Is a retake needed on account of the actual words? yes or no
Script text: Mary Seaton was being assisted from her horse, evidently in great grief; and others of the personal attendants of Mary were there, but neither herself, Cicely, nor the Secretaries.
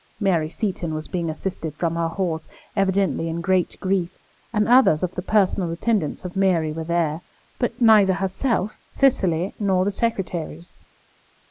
no